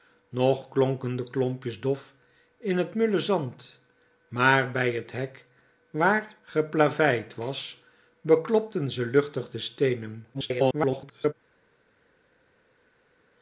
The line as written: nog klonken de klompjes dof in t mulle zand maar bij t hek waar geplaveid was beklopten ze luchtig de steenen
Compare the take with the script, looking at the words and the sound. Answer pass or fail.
fail